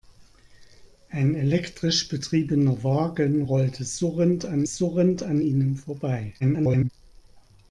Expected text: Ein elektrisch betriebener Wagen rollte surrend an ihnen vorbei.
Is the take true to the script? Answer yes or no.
no